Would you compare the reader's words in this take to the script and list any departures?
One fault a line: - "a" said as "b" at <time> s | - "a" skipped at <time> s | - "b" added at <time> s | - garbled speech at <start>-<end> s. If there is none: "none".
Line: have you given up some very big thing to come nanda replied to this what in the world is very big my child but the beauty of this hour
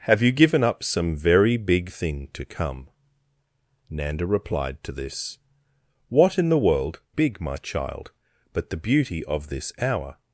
- "is very" skipped at 7.0 s